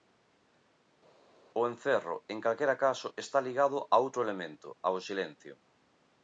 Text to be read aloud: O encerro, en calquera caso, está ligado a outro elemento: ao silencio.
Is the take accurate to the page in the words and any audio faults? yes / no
yes